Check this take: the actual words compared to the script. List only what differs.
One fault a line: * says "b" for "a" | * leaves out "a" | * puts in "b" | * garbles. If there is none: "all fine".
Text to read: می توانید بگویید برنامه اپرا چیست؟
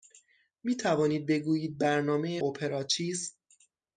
all fine